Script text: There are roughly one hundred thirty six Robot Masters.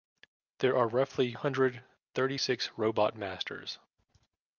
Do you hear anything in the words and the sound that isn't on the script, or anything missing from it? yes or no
yes